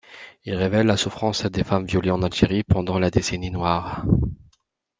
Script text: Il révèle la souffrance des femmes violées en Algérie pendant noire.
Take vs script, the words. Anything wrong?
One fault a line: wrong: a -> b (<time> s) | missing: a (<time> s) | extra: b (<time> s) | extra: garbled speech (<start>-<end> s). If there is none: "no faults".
extra: la décennie (3.0 s)